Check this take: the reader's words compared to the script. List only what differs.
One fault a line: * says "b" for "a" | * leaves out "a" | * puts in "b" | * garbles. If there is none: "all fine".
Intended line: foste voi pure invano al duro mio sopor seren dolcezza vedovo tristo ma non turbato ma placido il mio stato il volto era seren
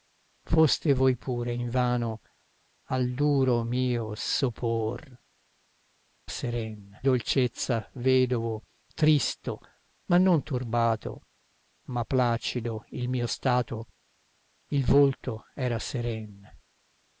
all fine